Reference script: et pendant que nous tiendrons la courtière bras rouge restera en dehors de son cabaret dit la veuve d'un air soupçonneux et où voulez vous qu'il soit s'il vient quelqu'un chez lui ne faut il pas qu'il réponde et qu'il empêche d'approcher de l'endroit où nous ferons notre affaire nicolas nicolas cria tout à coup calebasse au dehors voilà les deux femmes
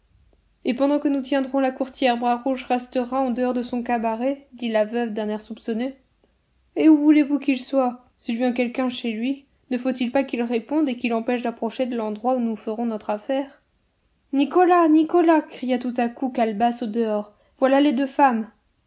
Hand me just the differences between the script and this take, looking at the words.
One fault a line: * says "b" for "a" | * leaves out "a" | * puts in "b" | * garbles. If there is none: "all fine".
all fine